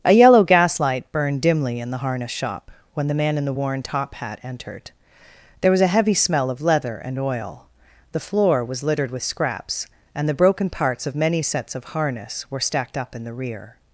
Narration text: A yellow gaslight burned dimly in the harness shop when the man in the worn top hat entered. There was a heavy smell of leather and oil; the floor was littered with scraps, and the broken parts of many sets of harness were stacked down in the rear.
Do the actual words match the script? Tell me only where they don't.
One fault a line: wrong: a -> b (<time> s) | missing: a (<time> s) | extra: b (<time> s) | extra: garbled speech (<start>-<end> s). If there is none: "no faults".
wrong: down -> up (13.0 s)